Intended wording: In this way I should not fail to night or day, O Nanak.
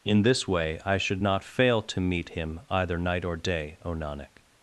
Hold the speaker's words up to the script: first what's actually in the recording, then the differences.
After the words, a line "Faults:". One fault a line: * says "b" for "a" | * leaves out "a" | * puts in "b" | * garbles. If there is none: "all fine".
In this way I should not fail to meet Him either night or day, O Nanak.
Faults:
* puts in "meet Him either"